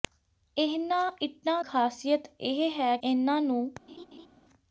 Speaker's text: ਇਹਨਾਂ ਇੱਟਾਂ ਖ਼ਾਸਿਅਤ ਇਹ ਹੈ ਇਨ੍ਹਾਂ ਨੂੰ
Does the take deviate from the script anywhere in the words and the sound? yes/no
yes